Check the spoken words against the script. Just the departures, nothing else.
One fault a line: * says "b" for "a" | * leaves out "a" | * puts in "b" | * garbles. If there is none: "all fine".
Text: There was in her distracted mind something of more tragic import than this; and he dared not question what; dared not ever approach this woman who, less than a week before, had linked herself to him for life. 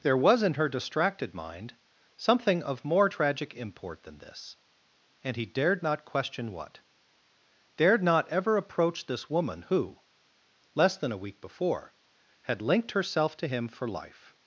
all fine